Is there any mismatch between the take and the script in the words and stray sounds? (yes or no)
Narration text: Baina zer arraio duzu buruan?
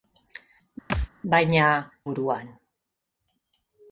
yes